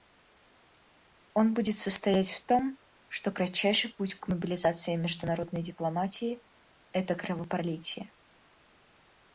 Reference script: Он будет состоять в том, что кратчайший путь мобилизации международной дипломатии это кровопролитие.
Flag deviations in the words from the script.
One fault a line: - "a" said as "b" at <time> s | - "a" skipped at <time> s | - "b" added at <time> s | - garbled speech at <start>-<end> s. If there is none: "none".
- "к" added at 4.2 s